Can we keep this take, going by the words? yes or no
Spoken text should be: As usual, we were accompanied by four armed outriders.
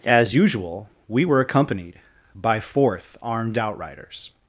no